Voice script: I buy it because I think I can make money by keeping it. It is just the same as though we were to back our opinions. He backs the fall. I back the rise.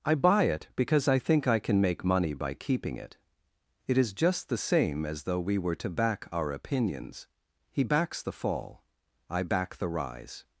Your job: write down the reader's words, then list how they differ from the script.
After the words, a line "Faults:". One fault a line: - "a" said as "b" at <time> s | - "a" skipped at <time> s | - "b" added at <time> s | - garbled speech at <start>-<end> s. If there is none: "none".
I buy it because I think I can make money by keeping it. It is just the same as though we were to back our opinions. He backs the fall. I back the rise.
Faults:
none